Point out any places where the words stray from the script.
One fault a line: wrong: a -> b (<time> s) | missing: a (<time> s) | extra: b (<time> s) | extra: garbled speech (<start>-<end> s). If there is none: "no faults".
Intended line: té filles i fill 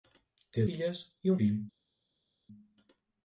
no faults